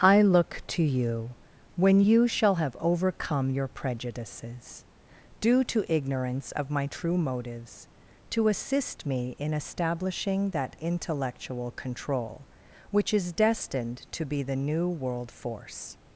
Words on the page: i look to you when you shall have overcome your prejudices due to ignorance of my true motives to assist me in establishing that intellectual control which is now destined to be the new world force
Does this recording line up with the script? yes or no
no